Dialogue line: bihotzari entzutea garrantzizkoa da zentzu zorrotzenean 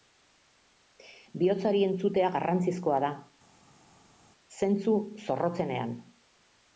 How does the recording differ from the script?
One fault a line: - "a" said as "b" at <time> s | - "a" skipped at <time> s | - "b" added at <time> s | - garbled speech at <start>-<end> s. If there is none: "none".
none